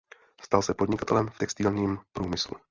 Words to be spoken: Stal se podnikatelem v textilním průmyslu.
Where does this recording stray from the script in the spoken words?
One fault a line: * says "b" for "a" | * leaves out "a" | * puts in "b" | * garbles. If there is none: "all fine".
all fine